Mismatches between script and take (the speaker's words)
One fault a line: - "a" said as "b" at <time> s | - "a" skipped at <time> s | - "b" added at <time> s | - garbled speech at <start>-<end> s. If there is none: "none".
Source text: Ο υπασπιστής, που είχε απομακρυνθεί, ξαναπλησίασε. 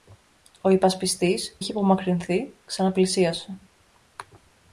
- "που" skipped at 1.6 s